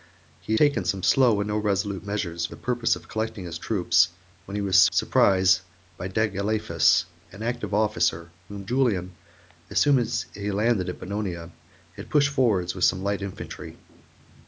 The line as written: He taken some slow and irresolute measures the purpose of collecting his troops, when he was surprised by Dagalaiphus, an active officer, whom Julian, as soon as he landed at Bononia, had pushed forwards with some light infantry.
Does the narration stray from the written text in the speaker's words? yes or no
no